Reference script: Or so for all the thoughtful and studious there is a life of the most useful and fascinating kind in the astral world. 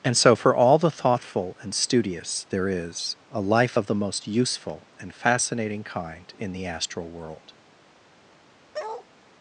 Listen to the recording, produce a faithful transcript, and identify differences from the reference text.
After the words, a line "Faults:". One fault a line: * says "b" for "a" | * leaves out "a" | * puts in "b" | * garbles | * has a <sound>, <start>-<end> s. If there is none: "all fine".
And so for all the thoughtful and studious there is a life of the most useful and fascinating kind in the astral world.
Faults:
* says "And" for "Or"
* has a bark, 8.7-9.1 s